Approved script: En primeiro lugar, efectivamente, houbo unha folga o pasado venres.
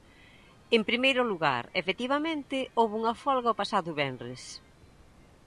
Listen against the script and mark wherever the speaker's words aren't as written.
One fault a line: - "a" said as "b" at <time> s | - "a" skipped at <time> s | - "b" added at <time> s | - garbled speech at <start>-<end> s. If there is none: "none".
none